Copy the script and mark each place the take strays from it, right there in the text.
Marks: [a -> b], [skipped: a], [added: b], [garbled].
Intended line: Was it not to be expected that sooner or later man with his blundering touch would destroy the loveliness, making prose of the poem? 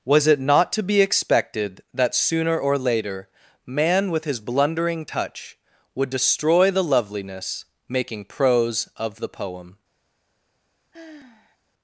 Was it not to be expected that sooner or later man with his blundering touch would destroy the loveliness, making prose of the poem?